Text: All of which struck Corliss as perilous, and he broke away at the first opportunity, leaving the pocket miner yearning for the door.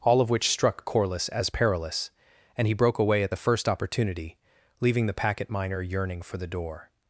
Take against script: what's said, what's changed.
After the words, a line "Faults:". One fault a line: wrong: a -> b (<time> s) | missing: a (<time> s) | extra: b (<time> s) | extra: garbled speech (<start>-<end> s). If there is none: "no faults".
All of which struck Corliss as perilous, and he broke away at the first opportunity, leaving the packet miner yearning for the door.
Faults:
wrong: pocket -> packet (5.1 s)